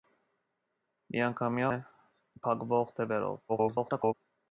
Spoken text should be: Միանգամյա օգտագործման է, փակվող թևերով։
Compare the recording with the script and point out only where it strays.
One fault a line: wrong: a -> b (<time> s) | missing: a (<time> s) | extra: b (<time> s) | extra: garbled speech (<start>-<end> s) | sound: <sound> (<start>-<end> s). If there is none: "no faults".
missing: օգտագործման (1.7 s)
extra: garbled speech (3.5-4.1 s)